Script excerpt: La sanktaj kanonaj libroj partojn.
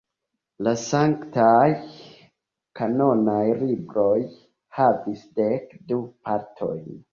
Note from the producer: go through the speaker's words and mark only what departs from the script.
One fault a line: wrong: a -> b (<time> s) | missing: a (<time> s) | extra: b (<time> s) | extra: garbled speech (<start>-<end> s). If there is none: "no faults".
extra: havis dek du (4.8 s)